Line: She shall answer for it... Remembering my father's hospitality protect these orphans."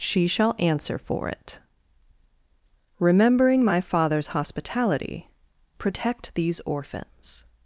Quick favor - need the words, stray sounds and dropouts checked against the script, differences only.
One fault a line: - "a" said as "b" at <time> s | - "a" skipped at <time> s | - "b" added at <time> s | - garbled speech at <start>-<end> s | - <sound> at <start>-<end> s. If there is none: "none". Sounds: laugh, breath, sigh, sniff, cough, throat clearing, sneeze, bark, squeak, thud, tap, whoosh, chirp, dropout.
none